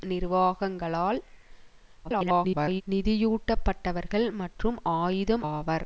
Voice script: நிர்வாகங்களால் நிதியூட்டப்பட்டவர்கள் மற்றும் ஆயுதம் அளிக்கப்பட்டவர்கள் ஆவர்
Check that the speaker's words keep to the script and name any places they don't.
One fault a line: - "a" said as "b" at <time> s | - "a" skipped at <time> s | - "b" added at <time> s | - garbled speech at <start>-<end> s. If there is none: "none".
- garbled speech at 2.0-2.8 s
- "அளிக்கப்பட்டவர்கள்" skipped at 5.4 s